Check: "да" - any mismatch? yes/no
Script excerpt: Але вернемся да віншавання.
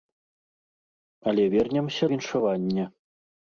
yes